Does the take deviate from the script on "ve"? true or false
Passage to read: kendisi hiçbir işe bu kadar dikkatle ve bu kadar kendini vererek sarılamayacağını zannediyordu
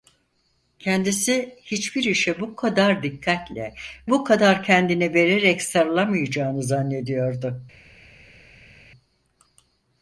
true